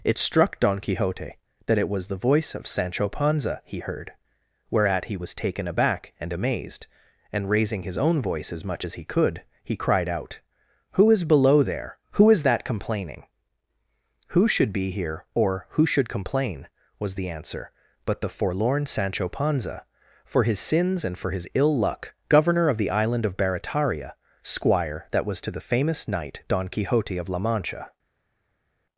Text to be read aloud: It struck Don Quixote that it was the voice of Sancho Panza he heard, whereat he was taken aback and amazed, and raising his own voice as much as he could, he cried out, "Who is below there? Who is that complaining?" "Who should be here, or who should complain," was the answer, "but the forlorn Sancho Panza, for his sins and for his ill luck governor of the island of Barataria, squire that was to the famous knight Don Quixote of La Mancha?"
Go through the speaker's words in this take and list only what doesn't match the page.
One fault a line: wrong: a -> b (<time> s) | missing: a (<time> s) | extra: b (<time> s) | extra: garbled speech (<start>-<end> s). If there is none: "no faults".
no faults